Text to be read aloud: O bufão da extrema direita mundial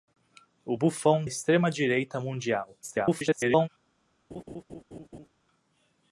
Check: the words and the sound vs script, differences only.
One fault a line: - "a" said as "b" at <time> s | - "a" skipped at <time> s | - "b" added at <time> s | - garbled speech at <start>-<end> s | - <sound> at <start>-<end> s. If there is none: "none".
- "da" skipped at 1.2 s
- garbled speech at 2.8-3.7 s
- laugh at 4.3-5.3 s